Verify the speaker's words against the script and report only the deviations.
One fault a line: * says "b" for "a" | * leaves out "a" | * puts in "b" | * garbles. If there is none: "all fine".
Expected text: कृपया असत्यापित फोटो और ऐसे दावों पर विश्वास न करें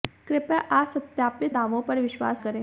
* leaves out "फोटो और ऐसे"
* leaves out "न"